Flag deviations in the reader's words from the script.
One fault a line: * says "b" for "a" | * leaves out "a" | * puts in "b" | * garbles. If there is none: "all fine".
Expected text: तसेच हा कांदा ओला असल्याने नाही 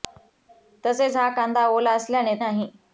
all fine